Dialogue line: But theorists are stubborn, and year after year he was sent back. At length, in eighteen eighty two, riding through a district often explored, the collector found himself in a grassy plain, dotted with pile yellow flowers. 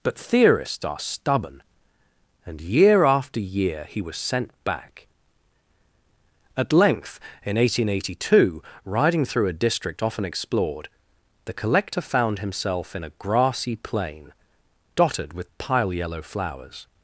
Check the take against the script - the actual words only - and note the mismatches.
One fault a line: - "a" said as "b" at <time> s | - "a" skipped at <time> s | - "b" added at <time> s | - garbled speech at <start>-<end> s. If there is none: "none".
none